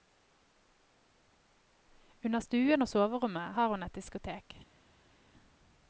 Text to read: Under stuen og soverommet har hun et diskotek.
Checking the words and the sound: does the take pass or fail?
pass